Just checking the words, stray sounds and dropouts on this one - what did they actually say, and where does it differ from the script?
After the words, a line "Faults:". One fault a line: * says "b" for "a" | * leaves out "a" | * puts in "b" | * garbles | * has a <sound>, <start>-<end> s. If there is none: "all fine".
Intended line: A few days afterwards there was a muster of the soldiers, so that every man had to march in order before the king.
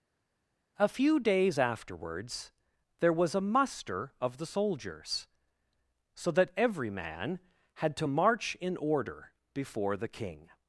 A few days afterwards there was a muster of the soldiers, so that every man had to march in order before the king.
Faults:
all fine